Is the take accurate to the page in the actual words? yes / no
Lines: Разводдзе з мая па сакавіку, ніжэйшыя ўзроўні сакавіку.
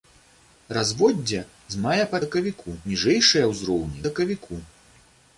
yes